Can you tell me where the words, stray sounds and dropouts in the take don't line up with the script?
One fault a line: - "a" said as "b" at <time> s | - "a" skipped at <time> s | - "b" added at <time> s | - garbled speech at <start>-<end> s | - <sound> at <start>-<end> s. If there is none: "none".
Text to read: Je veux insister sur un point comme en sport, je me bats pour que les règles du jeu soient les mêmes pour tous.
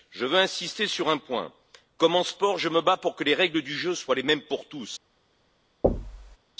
- thud at 5.8-6.4 s